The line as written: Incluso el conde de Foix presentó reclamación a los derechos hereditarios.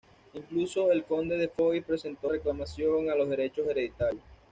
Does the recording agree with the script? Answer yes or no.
yes